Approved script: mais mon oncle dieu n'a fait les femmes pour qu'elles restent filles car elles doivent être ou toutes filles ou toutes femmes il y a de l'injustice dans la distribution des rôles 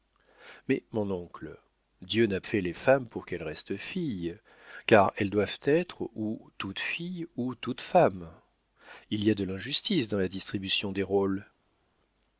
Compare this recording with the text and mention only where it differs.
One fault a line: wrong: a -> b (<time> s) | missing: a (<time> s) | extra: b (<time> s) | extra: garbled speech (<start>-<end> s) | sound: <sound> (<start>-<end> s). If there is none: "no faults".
no faults